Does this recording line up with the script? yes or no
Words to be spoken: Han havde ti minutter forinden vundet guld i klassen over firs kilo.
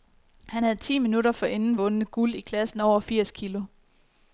yes